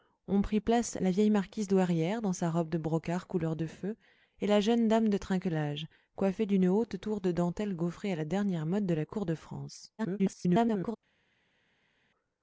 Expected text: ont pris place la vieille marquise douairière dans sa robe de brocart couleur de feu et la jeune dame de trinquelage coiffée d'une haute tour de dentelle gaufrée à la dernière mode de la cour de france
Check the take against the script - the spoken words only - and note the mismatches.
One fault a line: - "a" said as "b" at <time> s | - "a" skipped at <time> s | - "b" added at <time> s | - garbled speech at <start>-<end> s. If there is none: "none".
- garbled speech at 10.0-11.0 s